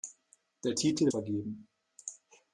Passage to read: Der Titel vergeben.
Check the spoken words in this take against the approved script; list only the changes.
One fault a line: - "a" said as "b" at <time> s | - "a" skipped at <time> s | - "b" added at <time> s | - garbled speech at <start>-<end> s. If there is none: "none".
none